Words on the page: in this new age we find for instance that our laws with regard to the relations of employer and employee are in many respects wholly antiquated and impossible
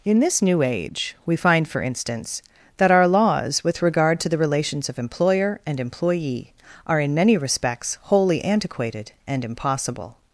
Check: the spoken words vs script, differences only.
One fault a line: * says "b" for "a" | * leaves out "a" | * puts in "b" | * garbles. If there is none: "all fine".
all fine